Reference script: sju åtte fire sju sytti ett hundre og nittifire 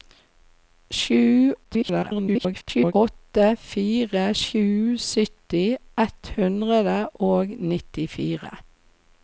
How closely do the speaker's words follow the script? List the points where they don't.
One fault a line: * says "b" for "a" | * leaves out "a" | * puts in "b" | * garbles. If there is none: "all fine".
* garbles